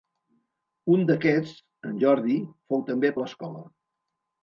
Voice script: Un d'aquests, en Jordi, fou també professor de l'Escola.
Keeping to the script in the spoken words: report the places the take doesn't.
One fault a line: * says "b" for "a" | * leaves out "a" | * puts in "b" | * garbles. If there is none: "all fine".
* leaves out "professor"